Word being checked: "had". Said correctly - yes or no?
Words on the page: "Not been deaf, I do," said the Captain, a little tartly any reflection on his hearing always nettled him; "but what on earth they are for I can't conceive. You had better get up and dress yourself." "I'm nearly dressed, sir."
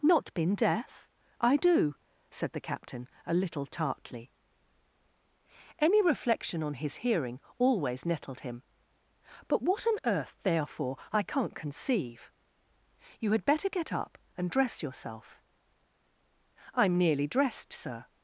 yes